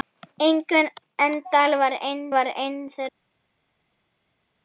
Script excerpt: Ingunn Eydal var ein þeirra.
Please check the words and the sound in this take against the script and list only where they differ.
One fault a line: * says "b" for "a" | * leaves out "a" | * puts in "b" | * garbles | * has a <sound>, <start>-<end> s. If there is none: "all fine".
* puts in "var ein"